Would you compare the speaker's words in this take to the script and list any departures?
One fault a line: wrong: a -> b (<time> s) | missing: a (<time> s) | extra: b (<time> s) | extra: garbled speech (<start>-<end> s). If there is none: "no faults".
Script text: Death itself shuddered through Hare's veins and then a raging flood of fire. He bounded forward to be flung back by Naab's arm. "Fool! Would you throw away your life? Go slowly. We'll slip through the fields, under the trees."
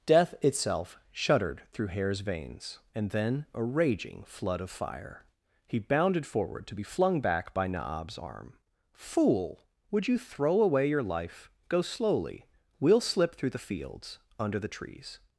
no faults